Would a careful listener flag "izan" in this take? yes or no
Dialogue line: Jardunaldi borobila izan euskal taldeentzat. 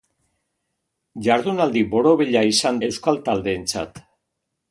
no